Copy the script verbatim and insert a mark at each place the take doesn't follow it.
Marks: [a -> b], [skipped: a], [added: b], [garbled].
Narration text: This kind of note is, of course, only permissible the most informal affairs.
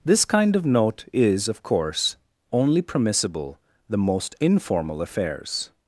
This kind of note is, of course, only permissible the most informal affairs.